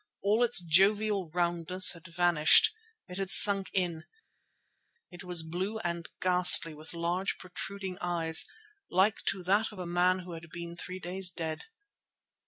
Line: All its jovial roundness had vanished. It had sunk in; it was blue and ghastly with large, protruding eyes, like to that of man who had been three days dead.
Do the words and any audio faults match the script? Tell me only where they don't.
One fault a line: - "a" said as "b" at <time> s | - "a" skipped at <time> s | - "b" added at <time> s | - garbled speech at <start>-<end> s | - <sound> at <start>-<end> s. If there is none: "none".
- "a" added at 9.8 s